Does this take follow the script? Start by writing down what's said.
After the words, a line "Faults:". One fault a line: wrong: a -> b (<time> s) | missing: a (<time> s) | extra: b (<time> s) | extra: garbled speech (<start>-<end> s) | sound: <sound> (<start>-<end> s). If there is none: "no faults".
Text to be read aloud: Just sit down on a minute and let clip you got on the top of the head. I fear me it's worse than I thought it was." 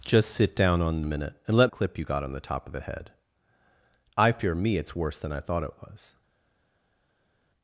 Just sit down on a minute and let clip you got on the top of the head. I fear me it's worse than I thought it was."
Faults:
no faults